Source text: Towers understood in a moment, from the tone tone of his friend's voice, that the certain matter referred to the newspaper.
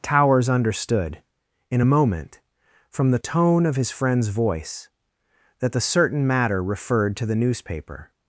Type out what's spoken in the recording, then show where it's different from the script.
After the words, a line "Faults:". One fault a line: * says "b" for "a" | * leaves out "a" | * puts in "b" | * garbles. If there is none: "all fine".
Towers understood in a moment, from the tone of his friend's voice, that the certain matter referred to the newspaper.
Faults:
* leaves out "tone"